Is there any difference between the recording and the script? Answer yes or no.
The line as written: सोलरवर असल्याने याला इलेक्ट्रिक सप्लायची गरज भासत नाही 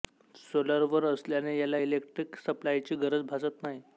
no